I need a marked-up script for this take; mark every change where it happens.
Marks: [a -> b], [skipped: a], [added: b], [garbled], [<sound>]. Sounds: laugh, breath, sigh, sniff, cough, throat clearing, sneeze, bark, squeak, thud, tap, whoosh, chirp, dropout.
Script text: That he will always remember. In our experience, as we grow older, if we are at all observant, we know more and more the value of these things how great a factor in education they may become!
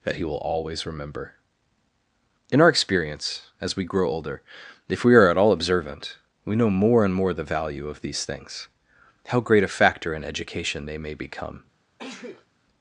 That he will always remember. In our experience, as we grow older, if we are at all observant, we know more and more the value of these things how great a factor in education they may become! [sneeze]